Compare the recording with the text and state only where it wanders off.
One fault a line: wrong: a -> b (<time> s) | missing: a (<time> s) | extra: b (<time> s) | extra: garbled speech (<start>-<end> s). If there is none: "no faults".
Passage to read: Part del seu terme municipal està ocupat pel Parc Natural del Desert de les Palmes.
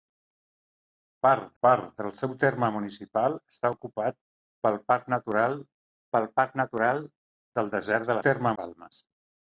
extra: part (1.7 s)
extra: pel Parc Natural (6.2 s)
wrong: les -> terme (8.2 s)